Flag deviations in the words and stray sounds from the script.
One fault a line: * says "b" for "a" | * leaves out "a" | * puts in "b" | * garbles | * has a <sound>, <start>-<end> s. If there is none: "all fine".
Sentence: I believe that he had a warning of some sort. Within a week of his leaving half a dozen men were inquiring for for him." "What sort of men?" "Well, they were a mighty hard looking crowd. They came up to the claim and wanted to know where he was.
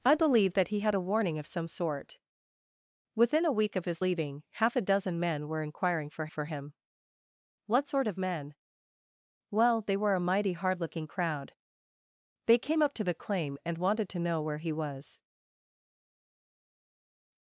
all fine